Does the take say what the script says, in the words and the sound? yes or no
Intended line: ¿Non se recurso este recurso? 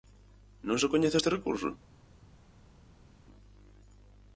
no